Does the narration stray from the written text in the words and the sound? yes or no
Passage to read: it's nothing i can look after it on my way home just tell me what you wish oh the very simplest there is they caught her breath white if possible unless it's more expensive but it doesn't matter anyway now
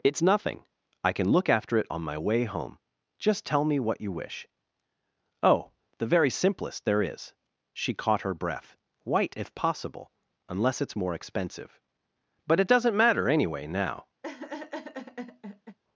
yes